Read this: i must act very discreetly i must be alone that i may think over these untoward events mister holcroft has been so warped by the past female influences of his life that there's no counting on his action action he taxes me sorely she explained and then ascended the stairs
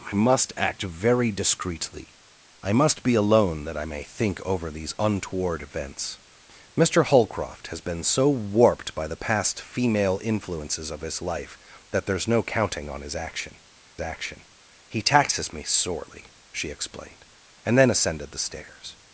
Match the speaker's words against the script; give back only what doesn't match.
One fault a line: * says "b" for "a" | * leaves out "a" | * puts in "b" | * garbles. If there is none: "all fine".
all fine